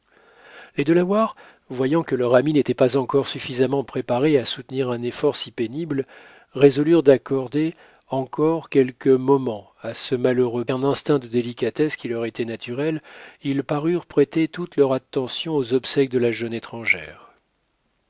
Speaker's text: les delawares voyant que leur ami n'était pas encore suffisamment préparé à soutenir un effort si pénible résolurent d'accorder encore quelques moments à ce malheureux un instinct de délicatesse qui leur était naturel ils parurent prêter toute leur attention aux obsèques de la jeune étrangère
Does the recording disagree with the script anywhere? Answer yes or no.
no